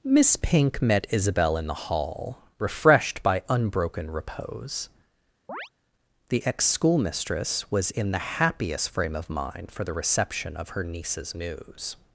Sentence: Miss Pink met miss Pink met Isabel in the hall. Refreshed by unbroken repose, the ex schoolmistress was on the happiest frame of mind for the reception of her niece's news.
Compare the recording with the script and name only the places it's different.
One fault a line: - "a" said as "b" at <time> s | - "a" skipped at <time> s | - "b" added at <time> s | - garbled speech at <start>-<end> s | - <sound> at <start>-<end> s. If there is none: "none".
- "miss Pink met" skipped at 1.1 s
- chirp at 5.5-5.7 s
- "on" said as "in" at 7.9 s